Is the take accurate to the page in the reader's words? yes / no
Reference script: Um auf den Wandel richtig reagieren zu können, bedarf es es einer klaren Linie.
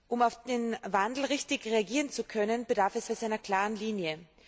yes